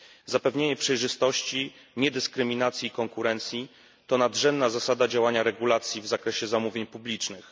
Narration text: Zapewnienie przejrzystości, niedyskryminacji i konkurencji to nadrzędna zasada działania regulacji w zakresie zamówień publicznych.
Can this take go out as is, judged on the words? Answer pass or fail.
pass